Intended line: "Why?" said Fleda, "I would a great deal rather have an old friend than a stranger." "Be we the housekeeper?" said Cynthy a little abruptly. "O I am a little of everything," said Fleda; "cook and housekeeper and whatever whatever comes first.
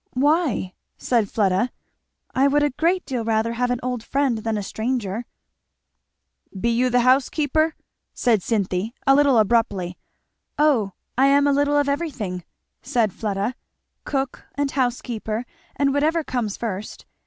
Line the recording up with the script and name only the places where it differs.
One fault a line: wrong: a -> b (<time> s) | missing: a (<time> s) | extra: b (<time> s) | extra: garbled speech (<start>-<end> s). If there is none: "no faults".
wrong: we -> you (6.7 s)
missing: whatever (16.2 s)